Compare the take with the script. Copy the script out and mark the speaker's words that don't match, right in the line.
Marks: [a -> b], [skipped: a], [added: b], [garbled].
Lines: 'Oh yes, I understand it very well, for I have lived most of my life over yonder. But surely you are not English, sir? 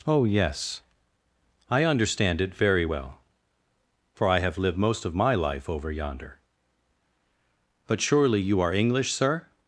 'Oh yes, I understand it very well, for I have lived most of my life over yonder. But surely you are [skipped: not] English, sir?